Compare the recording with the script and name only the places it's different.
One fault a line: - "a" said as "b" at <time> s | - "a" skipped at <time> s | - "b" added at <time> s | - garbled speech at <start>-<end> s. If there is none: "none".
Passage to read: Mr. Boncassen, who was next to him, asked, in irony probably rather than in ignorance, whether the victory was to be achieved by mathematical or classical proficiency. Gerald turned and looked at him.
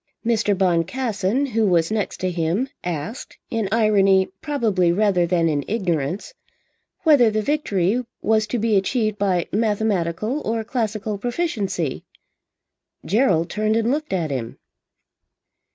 none